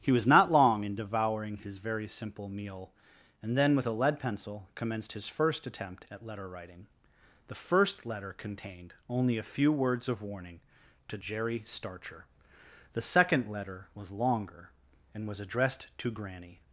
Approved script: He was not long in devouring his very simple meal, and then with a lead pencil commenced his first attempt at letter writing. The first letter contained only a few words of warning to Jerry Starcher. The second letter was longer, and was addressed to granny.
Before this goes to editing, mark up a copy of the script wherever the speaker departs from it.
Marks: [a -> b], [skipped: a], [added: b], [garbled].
He was not long in devouring his very simple meal, and then with a lead pencil commenced his first attempt at letter writing. The first letter contained only a few words of warning to Jerry Starcher. The second letter was longer, and was addressed to granny.